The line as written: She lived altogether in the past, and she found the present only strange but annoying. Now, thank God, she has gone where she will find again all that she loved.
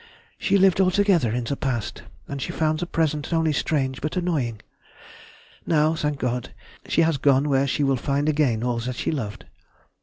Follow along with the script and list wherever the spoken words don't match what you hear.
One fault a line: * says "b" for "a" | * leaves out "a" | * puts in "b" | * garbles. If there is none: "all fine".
all fine